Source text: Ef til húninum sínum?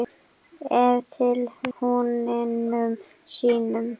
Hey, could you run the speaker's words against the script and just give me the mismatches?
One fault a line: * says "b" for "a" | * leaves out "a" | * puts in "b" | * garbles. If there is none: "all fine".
all fine